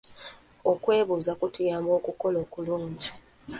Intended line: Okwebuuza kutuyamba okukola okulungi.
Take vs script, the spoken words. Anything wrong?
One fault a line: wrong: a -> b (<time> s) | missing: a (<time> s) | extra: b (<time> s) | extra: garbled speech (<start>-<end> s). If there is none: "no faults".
no faults